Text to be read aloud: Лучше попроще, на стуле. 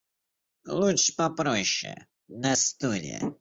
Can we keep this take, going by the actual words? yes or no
yes